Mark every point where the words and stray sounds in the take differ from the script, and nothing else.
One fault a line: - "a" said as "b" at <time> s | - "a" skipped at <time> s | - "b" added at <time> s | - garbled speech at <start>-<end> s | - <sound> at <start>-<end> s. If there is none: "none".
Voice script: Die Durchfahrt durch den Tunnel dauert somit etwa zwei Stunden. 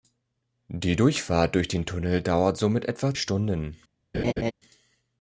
- "zwei" skipped at 3.1 s
- laugh at 4.1-4.5 s